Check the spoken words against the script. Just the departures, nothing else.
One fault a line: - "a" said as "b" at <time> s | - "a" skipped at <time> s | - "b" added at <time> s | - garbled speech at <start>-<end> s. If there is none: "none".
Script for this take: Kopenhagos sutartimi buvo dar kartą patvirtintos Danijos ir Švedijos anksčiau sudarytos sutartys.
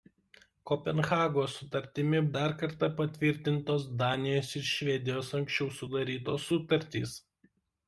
- "buvo" skipped at 2.2 s